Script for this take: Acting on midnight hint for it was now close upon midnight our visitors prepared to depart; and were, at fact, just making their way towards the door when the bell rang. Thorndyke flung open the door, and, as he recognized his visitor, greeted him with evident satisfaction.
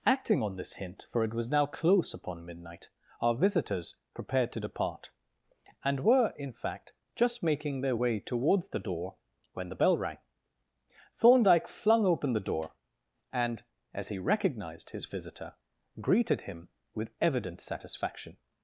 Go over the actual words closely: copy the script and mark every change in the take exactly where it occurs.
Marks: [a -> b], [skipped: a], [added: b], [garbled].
Acting on [midnight -> this] hint for it was now close upon midnight our visitors prepared to depart; and were, [at -> in] fact, just making their way towards the door when the bell rang. Thorndyke flung open the door, and, as he recognized his visitor, greeted him with evident satisfaction.